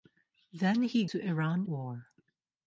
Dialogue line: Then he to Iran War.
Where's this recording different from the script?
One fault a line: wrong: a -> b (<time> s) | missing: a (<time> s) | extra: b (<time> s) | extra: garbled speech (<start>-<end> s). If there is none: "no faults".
no faults